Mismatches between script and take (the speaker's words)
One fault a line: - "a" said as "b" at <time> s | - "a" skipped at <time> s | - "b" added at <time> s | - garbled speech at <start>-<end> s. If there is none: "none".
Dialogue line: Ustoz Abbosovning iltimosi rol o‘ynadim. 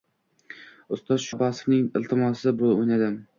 none